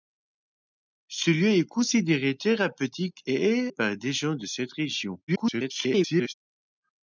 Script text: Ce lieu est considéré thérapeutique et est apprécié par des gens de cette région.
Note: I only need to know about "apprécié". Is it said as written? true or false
false